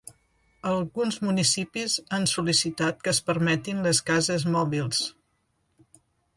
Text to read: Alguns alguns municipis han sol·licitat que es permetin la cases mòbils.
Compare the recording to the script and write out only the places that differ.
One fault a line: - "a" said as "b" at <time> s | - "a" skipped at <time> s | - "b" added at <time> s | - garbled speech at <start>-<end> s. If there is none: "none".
- "alguns" skipped at 1.2 s
- "la" said as "les" at 3.9 s